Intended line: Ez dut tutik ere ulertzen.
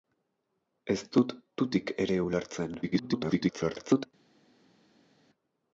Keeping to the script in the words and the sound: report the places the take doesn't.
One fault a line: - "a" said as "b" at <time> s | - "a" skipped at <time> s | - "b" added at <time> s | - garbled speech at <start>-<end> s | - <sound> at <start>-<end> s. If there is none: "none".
- garbled speech at 2.8-4.1 s